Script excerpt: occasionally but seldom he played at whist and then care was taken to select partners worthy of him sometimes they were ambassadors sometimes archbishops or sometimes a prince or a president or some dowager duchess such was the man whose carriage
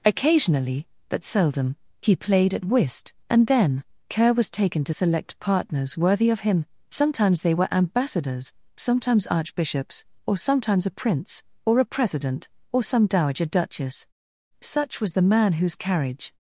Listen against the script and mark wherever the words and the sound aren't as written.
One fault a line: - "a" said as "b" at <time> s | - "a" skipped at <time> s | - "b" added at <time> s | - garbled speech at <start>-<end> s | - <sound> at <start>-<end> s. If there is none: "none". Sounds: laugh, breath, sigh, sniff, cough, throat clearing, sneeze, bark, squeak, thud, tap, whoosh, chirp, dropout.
none